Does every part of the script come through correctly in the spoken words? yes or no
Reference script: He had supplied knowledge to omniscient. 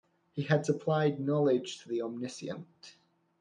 no